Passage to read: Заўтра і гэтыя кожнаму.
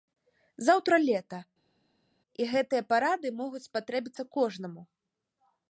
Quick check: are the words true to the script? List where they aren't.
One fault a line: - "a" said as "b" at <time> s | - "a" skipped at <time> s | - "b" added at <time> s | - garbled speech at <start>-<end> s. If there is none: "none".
- "лета" added at 1.1 s
- "парады могуць спатрэбіцца" added at 2.9 s